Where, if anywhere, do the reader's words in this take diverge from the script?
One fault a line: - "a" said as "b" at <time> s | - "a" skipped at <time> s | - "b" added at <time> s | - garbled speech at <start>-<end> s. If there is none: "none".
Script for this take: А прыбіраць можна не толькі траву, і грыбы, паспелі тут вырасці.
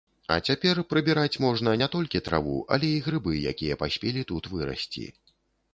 - "цяпер" added at 0.5 s
- "але" added at 2.8 s
- "якія" added at 3.5 s